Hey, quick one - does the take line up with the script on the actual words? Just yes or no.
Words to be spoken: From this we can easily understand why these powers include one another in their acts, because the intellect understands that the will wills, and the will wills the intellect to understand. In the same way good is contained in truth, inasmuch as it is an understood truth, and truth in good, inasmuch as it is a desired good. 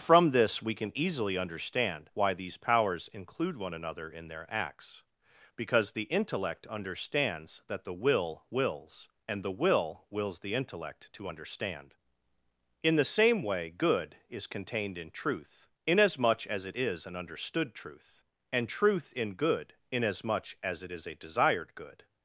yes